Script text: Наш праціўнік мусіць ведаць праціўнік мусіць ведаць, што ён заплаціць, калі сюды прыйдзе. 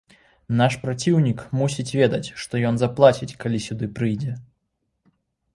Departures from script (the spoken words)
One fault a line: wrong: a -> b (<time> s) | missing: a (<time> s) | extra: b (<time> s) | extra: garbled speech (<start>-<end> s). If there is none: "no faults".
missing: праціўнік мусіць ведаць (2.3 s)